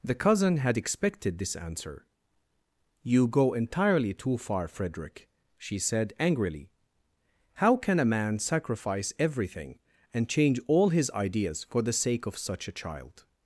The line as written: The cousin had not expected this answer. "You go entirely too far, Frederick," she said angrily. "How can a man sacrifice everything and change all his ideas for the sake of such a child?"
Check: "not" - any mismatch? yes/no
yes